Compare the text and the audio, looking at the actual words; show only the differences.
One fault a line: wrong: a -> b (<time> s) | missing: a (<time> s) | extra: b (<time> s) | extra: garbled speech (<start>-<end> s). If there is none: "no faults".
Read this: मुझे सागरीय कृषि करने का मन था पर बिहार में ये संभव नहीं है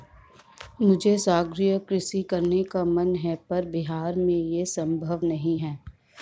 wrong: था -> है (3.1 s)